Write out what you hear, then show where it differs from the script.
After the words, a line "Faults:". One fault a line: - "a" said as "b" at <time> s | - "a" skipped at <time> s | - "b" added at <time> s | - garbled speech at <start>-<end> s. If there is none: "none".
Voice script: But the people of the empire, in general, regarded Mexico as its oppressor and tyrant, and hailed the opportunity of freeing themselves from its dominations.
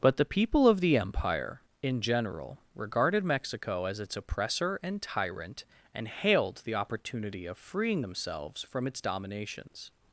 But the people of the empire, in general, regarded Mexico as its oppressor and tyrant, and hailed the opportunity of freeing themselves from its dominations.
Faults:
none